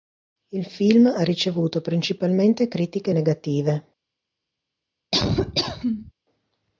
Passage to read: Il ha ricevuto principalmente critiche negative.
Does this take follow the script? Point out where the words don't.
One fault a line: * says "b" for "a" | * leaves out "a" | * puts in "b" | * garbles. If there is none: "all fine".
* puts in "film"